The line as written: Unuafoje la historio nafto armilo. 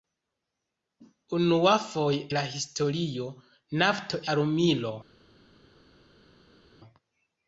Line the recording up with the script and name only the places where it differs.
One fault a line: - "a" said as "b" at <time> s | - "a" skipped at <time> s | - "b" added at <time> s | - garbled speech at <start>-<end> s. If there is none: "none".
none